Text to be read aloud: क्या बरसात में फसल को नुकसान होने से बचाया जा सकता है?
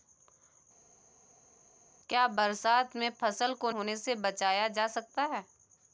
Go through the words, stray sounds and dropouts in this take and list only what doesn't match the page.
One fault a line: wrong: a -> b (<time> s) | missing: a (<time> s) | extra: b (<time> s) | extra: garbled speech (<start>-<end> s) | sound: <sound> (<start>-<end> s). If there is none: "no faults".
missing: नुकसान (3.7 s)